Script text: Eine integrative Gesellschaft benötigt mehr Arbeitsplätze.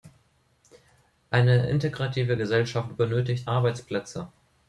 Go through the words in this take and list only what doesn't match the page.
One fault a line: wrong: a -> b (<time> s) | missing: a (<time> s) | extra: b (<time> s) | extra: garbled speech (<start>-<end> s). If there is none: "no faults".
missing: mehr (3.5 s)